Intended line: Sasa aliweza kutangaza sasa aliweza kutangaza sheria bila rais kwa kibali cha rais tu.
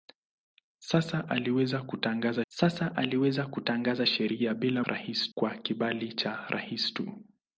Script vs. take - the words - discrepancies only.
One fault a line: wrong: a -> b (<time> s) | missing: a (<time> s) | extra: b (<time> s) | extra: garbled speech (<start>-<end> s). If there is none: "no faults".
no faults